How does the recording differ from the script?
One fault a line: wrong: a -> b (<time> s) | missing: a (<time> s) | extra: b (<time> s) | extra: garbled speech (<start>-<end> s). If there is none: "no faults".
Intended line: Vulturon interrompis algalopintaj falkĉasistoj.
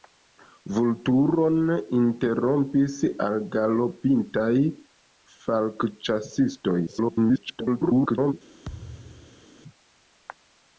extra: garbled speech (6.9-8.3 s)